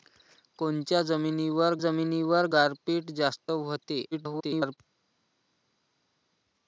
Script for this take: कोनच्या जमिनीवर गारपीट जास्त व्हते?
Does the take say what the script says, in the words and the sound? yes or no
no